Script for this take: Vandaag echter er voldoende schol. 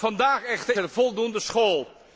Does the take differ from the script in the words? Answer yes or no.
no